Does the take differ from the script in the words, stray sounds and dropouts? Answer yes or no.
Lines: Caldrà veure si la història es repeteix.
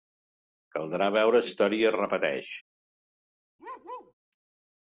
yes